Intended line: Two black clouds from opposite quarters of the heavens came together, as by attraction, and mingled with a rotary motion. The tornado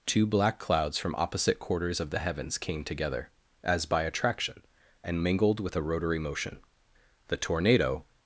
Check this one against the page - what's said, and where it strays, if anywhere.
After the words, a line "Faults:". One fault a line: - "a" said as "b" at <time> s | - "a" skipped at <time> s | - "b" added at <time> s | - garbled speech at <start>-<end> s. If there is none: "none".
Two black clouds from opposite quarters of the heavens came together, as by attraction, and mingled with a rotary motion. The tornado
Faults:
none